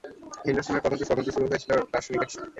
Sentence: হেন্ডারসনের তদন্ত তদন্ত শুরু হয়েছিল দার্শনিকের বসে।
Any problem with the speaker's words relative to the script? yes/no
no